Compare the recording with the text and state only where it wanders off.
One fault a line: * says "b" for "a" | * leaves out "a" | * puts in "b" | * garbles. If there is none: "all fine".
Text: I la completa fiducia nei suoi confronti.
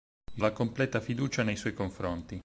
all fine